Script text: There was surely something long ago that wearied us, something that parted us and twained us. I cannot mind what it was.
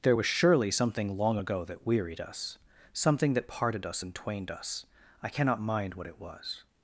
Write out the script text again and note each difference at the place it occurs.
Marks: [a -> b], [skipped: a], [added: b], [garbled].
There was surely something long ago that wearied us, something that parted us and twained us. I cannot mind what it was.